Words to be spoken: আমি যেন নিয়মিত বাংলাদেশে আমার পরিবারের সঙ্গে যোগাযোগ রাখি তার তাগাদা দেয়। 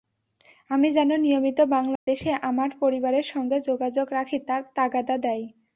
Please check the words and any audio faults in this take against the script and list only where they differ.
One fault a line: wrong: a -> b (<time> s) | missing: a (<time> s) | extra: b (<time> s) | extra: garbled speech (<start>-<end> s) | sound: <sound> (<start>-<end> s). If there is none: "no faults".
sound: dropout (2.0-2.1 s)